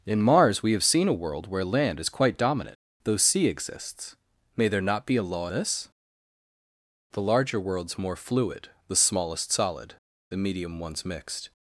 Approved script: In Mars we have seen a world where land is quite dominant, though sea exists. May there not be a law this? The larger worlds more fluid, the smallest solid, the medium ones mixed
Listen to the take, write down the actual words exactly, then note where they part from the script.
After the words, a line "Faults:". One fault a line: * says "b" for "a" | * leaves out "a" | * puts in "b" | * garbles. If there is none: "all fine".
In Mars we have seen a world where land is quite dominant, though sea exists. May there not be a law this? The larger worlds more fluid, the smallest solid, the medium ones mixed
Faults:
all fine